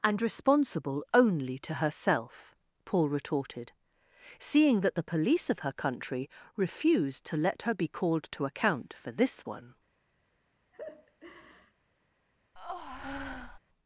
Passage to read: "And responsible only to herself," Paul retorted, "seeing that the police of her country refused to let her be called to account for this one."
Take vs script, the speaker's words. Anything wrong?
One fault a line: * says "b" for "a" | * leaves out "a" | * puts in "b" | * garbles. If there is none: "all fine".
all fine